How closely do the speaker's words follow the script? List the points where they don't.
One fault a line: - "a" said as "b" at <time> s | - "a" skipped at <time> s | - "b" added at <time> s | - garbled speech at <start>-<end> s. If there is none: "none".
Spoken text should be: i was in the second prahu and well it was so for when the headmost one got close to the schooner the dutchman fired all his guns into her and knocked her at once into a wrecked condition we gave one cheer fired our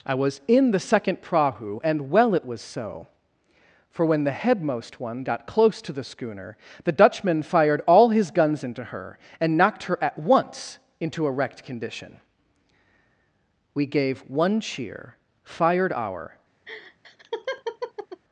none